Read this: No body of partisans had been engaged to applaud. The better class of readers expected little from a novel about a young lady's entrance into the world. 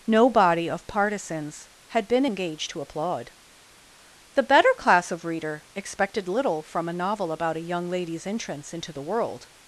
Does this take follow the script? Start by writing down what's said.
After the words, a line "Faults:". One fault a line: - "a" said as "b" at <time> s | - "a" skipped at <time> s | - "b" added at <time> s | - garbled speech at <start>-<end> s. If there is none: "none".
No body of partisans had been engaged to applaud. The better class of reader expected little from a novel about a young lady's entrance into the world.
Faults:
- "readers" said as "reader" at 5.2 s